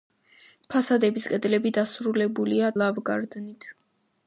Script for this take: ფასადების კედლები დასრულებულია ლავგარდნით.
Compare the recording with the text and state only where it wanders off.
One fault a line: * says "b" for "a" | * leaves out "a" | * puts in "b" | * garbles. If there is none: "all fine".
all fine